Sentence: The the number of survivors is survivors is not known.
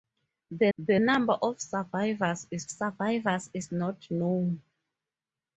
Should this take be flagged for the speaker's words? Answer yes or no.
no